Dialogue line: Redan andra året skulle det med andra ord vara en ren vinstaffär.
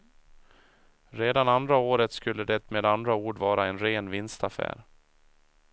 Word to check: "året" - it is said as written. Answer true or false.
true